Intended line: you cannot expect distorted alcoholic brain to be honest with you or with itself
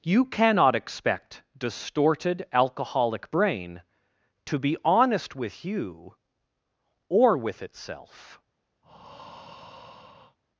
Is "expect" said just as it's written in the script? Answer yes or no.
yes